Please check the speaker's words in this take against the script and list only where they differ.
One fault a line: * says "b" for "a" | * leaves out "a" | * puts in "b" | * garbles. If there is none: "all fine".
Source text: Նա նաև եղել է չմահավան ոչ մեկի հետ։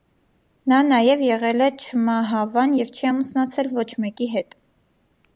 * puts in "և չի ամուսնացել"